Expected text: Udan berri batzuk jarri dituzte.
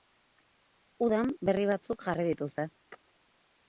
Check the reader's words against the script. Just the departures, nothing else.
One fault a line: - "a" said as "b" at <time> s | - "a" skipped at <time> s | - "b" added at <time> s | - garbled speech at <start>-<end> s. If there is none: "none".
none